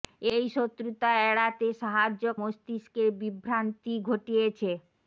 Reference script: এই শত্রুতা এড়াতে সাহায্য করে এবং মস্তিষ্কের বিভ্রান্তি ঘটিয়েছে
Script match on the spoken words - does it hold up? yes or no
no